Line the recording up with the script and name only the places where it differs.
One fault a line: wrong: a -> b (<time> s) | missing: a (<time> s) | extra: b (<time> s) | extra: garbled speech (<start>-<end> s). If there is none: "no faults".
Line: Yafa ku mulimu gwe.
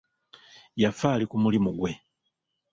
extra: ali (1.1 s)